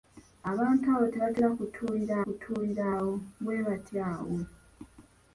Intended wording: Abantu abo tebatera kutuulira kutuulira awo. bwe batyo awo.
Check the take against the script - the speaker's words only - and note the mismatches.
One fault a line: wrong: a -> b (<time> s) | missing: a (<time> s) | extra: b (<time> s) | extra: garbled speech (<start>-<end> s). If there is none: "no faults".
no faults